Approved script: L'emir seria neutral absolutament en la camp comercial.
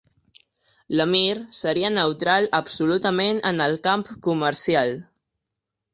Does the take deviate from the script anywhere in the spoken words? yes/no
yes